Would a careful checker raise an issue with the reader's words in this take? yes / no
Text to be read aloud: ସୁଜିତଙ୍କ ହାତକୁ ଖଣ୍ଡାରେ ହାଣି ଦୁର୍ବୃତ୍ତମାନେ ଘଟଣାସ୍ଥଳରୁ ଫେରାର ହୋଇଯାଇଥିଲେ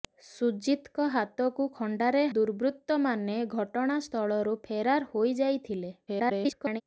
yes